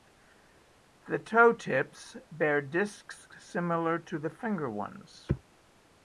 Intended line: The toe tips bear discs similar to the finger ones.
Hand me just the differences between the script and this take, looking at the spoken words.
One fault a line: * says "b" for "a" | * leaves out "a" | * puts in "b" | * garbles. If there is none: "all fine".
all fine